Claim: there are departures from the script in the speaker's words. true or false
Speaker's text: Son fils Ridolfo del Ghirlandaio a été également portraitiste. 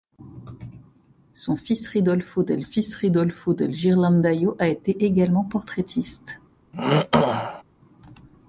true